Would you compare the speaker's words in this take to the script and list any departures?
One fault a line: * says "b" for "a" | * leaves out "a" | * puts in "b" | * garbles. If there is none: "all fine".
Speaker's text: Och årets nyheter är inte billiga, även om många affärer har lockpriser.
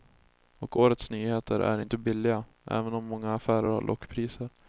all fine